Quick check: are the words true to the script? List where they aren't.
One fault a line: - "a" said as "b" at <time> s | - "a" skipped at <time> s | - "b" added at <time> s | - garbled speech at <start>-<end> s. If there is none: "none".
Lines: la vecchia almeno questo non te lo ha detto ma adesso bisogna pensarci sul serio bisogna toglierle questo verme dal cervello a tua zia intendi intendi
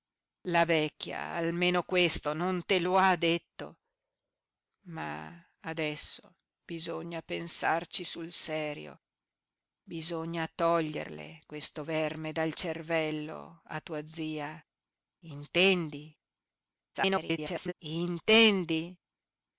- garbled speech at 16.9-17.7 s